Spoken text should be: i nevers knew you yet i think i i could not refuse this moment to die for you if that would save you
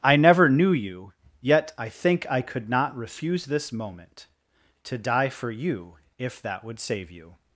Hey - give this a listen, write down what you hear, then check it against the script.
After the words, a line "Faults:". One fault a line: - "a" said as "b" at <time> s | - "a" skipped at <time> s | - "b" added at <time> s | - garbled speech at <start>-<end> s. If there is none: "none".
i never knew you yet i think i could not refuse this moment to die for you if that would save you
Faults:
- "nevers" said as "never" at 0.1 s
- "i" skipped at 2.4 s